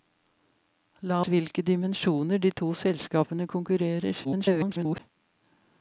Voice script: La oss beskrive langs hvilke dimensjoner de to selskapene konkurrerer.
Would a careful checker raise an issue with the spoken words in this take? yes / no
yes